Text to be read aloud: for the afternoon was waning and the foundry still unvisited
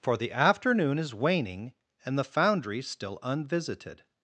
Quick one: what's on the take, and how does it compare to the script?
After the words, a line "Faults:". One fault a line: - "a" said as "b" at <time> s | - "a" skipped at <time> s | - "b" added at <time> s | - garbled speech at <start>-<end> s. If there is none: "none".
for the afternoon is waning and the foundry still unvisited
Faults:
- "was" said as "is" at 1.0 s